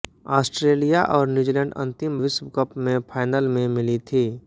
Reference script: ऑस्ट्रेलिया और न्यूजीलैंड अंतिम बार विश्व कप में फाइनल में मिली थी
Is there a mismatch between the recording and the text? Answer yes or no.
yes